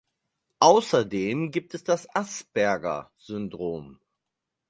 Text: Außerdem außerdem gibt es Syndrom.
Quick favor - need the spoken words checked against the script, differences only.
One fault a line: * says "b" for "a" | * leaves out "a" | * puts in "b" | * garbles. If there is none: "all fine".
* leaves out "außerdem"
* puts in "das Asperger"